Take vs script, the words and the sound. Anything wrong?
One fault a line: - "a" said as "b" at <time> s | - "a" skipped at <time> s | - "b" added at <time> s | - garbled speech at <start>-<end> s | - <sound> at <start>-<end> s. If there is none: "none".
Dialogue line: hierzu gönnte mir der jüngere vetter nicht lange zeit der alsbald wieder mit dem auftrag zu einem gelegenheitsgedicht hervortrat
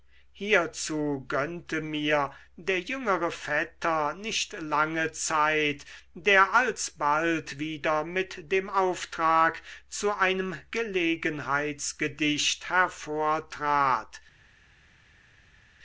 none